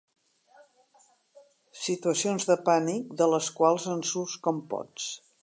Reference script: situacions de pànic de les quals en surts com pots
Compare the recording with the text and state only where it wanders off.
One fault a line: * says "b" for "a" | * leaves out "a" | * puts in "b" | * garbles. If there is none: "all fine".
all fine